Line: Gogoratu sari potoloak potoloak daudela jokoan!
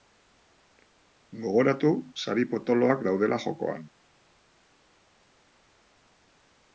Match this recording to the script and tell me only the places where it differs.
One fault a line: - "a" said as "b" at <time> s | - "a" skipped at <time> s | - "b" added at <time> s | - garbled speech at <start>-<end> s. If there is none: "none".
- "potoloak" skipped at 3.0 s